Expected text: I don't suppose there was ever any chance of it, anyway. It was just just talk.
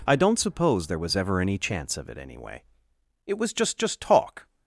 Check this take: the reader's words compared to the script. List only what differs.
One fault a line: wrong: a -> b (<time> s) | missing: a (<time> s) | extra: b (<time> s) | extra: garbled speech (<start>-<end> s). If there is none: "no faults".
no faults